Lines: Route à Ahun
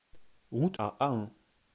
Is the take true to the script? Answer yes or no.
yes